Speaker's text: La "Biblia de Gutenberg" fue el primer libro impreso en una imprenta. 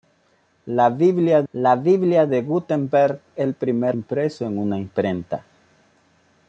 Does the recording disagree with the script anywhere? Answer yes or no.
yes